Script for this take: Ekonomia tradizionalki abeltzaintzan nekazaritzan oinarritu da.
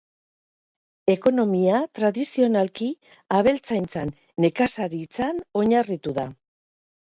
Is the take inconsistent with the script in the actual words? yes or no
no